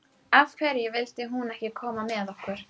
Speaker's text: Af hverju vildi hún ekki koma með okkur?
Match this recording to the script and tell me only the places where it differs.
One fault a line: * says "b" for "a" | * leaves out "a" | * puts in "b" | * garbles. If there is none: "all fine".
all fine